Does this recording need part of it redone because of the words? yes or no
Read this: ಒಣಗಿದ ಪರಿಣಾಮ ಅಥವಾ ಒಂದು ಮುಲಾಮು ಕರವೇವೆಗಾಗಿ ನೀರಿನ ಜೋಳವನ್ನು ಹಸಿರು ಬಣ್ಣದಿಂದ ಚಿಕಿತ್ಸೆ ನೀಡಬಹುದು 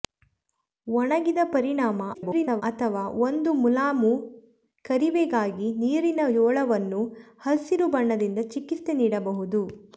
yes